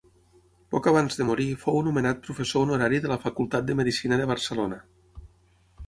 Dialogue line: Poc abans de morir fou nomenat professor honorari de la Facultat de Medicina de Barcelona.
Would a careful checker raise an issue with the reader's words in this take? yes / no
no